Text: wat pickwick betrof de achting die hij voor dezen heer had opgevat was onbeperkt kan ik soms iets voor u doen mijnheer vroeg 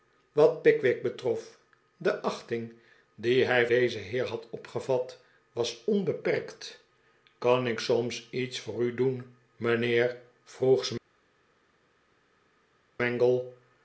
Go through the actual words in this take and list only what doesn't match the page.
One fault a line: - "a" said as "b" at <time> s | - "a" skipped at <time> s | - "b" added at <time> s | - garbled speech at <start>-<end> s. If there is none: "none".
- "voor" skipped at 3.7 s